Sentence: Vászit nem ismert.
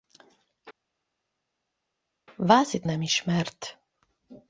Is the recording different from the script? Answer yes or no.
no